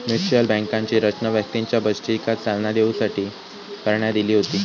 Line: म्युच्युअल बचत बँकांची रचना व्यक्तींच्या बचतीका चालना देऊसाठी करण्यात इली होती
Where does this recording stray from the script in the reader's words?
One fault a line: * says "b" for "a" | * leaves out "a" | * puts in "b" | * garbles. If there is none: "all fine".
* leaves out "बचत"